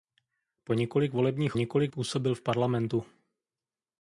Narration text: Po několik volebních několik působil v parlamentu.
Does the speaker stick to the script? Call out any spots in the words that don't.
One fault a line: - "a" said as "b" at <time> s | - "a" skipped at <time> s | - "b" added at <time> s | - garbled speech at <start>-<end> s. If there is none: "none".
none